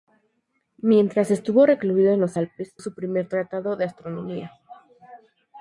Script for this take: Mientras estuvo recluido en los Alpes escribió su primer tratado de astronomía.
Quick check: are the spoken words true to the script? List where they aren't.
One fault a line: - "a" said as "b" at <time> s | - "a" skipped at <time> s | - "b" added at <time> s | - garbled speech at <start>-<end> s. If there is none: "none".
- "escribió" skipped at 2.8 s